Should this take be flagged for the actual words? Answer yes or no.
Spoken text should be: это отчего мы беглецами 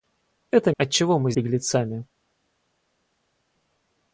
no